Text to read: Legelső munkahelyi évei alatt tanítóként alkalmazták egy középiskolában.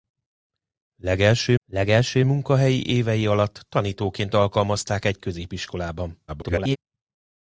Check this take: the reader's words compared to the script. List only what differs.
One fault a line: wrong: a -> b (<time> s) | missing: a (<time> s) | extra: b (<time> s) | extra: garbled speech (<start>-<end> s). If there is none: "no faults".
extra: legelső (1.6 s)
extra: garbled speech (6.3-6.8 s)